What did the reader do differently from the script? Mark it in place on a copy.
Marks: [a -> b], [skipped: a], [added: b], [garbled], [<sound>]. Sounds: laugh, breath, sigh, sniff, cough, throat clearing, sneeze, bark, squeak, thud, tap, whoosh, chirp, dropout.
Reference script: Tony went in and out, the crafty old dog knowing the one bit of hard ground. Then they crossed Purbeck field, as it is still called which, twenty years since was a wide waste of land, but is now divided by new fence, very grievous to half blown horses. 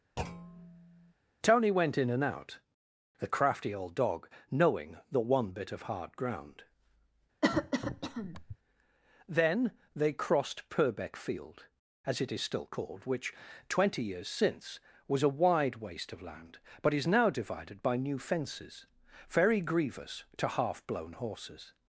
[thud] Tony went in and out, the crafty old dog knowing the one bit of hard ground. [cough] Then they crossed Purbeck field, as it is still called which, twenty years since was a wide waste of land, but is now divided by new [fence, -> fences] very grievous to half blown horses.